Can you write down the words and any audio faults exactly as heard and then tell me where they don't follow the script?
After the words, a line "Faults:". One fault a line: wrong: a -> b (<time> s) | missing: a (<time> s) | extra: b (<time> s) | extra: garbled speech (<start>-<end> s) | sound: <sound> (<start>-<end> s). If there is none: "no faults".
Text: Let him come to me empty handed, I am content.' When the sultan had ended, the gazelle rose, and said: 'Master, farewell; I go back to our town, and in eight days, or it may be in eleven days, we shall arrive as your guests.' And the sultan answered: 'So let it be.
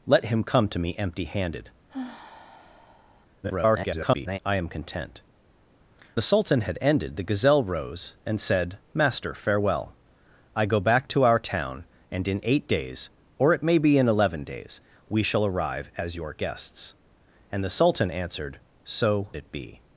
Let him come to me empty handed, [garbled] I am content.' The sultan had ended, the gazelle rose, and said: 'Master, farewell; I go back to our town, and in eight days, or it may be in eleven days, we shall arrive as your guests.' And the sultan answered: 'So it be.
Faults:
sound: sigh (1.9-3.3 s)
extra: garbled speech (3.4-4.4 s)
missing: When (5.2 s)
missing: let (19.3 s)